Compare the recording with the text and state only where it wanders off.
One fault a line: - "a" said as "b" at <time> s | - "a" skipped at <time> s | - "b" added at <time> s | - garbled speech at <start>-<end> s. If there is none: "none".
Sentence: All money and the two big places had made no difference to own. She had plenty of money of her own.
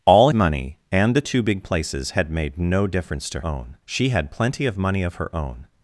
none